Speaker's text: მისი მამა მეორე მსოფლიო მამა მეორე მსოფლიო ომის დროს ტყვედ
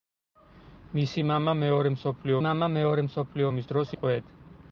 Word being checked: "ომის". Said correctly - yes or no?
yes